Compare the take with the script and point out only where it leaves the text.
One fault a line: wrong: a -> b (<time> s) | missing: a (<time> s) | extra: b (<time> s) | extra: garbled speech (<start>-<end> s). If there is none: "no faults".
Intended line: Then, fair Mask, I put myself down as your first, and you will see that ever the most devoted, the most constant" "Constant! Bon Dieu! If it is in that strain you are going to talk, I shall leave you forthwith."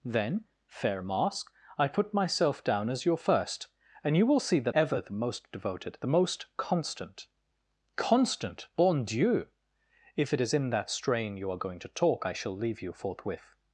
no faults